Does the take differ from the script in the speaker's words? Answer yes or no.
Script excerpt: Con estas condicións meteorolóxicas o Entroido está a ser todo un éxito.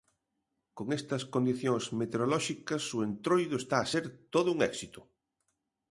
no